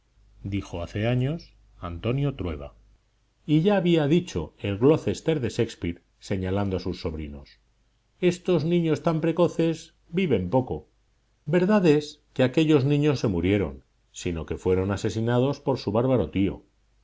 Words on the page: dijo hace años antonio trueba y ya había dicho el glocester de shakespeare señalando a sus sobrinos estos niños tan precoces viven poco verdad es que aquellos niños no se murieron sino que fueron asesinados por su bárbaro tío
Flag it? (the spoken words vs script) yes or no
yes